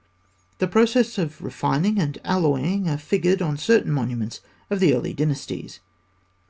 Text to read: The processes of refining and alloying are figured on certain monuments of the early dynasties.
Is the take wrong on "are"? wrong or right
right